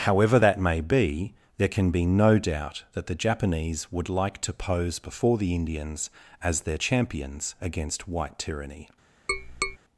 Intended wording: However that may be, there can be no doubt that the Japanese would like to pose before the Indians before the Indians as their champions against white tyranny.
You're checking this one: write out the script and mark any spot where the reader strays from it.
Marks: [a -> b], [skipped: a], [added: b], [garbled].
However that may be, there can be no doubt that the Japanese would like to pose before the Indians [skipped: before the Indians] as their champions against white tyranny.